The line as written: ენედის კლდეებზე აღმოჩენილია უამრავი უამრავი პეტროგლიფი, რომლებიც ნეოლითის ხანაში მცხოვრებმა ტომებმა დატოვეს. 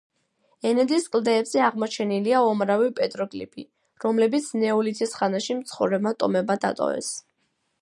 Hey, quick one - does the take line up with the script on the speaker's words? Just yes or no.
no